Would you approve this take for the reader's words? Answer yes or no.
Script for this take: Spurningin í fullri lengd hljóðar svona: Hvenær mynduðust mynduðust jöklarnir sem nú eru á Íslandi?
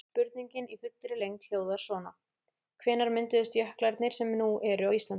no